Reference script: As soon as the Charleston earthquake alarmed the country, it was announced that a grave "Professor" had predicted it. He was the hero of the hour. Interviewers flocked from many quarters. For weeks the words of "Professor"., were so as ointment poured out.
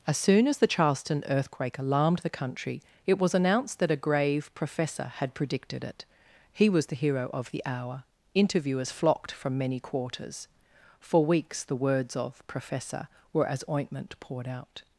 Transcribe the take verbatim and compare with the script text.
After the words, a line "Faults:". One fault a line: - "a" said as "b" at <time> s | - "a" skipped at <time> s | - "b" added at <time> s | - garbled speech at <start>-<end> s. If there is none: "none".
As soon as the Charleston earthquake alarmed the country, it was announced that a grave "Professor" had predicted it. He was the hero of the hour. Interviewers flocked from many quarters. For weeks the words of "Professor"., were as ointment poured out.
Faults:
- "so" skipped at 13.5 s